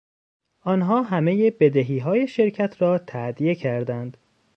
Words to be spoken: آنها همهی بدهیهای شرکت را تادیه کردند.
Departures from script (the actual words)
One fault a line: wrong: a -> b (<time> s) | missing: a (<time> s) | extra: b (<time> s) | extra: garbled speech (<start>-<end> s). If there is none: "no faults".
no faults